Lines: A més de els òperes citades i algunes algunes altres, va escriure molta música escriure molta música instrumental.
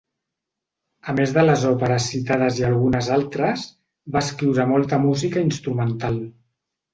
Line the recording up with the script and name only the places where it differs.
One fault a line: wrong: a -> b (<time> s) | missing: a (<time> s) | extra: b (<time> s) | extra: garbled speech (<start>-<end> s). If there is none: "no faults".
wrong: els -> les (1.4 s)
missing: algunes (3.1 s)
missing: escriure molta música (5.5 s)